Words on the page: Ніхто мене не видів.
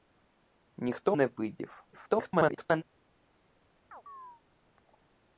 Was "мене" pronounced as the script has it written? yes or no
no